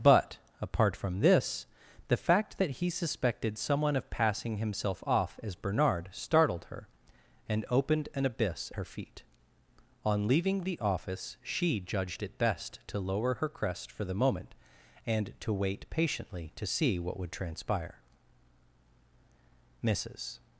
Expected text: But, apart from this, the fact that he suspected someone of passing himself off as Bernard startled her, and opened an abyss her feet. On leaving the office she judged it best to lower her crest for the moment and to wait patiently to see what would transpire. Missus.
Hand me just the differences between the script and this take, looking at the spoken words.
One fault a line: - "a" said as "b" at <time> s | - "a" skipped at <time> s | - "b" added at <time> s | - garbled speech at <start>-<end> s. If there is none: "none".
none